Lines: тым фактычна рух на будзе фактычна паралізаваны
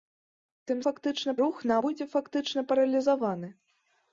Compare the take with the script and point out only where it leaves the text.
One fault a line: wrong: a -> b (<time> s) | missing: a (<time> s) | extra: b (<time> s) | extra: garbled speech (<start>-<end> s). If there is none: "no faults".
no faults